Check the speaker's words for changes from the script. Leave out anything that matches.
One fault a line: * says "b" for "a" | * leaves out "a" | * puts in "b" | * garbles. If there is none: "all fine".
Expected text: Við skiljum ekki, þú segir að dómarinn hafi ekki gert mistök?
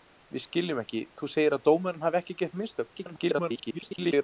* garbles